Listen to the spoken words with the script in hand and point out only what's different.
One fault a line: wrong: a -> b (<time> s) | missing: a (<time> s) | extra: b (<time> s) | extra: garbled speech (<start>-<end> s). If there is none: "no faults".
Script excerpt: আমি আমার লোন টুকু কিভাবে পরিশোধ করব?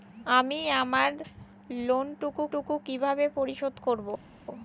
extra: টুকু (2.5 s)